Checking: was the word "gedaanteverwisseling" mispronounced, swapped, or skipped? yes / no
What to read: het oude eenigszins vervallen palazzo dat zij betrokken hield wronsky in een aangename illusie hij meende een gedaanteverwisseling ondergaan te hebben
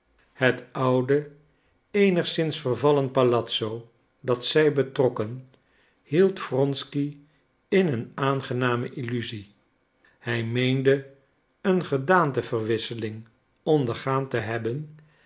no